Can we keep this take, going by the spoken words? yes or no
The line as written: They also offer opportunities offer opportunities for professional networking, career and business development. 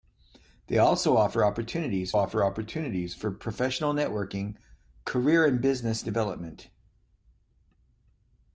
yes